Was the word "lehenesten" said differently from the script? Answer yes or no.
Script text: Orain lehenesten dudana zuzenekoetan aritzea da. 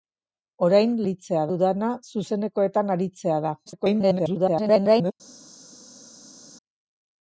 yes